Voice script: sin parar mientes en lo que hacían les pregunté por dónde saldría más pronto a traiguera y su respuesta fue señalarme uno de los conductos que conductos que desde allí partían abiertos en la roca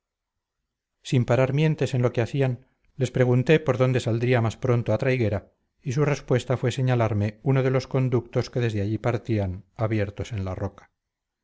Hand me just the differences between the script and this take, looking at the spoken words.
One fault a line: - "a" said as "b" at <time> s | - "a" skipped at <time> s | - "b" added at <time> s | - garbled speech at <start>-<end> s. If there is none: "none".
- "conductos que" skipped at 8.6 s